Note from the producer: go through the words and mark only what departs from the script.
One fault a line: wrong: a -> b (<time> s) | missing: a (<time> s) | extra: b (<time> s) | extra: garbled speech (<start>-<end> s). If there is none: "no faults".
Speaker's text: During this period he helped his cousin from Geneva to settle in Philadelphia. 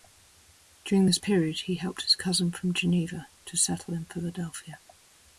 no faults